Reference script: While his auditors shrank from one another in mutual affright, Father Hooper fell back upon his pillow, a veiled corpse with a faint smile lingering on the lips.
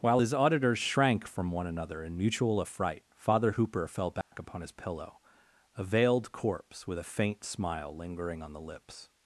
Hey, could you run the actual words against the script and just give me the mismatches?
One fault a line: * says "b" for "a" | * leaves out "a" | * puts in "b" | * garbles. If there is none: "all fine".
all fine